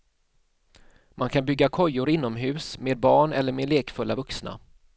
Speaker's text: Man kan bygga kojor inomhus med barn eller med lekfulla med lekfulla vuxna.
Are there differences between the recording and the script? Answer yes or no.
yes